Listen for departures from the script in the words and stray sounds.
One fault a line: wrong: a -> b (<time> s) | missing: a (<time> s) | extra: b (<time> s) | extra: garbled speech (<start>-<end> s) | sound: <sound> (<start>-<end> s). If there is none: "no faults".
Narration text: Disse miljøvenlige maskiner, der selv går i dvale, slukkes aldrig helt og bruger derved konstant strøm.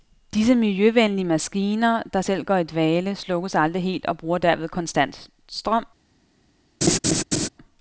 sound: laugh (6.8-7.5 s)